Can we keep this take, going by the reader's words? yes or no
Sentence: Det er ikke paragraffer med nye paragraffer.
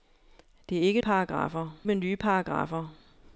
yes